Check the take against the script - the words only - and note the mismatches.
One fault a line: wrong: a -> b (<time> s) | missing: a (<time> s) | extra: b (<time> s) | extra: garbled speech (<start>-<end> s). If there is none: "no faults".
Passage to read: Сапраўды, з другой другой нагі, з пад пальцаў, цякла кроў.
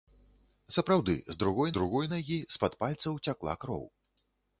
no faults